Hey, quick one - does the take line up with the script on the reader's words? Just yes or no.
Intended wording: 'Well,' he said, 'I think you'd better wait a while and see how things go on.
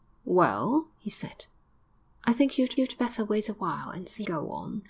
no